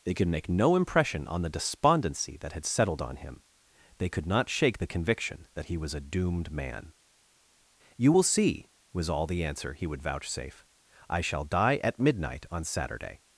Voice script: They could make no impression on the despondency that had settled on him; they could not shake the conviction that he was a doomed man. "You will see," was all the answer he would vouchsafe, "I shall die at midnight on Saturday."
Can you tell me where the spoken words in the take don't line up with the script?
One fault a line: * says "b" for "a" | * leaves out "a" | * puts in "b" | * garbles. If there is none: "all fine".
all fine